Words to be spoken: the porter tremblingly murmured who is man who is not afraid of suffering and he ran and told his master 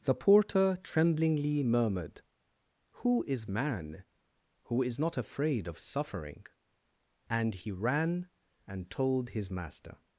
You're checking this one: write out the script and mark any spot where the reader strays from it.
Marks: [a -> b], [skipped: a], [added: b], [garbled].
the porter tremblingly murmured who is man who is not afraid of suffering and he ran and told his master